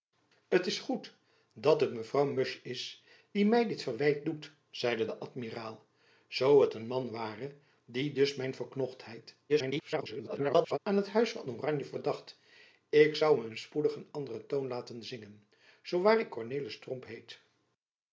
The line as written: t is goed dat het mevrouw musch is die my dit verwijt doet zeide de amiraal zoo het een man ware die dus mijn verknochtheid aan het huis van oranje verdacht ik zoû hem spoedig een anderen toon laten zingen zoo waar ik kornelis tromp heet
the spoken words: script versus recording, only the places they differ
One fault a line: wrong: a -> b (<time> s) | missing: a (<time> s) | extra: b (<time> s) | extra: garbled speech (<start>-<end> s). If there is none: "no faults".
extra: garbled speech (9.5-10.8 s)